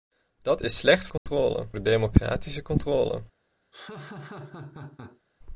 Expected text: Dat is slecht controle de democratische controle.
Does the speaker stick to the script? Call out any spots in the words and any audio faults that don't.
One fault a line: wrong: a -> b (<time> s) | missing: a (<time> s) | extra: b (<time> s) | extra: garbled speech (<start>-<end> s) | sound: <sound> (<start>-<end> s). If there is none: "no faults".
sound: dropout (1.2-1.3 s)
sound: laugh (3.7-5.2 s)